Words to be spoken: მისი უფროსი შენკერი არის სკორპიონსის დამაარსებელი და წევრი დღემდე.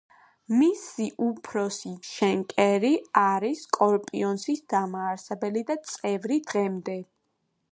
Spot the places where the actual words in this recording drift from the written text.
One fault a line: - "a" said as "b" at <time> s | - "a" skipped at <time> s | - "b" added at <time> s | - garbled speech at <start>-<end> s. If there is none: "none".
none